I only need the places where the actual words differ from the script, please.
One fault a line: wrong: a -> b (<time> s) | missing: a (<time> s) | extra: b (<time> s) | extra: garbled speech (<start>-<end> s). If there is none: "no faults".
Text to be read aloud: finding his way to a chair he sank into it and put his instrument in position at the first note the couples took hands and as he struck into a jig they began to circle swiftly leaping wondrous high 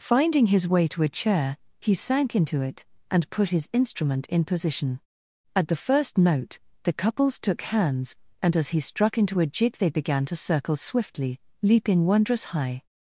no faults